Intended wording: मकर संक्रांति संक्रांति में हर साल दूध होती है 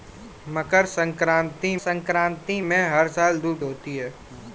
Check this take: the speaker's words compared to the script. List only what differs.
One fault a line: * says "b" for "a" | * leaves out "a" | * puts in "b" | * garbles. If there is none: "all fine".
all fine